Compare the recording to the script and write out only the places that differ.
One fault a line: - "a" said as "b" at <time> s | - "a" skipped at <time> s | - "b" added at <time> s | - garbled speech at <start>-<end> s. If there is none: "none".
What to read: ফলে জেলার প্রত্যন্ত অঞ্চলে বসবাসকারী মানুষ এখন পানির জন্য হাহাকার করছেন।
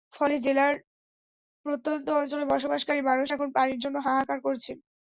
none